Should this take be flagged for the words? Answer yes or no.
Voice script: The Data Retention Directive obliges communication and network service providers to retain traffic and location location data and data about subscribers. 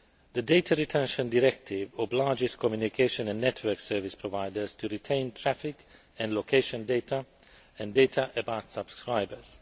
yes